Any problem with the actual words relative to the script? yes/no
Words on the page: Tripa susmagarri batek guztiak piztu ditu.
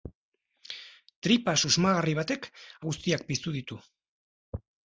no